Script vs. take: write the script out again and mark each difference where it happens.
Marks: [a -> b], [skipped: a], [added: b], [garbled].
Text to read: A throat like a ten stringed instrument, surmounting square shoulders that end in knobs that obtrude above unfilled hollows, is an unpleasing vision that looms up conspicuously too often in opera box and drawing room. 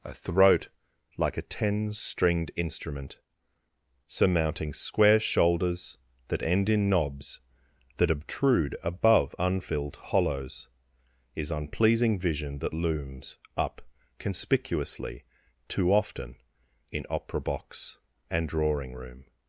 A throat like a ten stringed instrument, surmounting square shoulders that end in knobs that obtrude above unfilled hollows, is [skipped: an] unpleasing vision that looms up conspicuously too often in opera box and drawing room.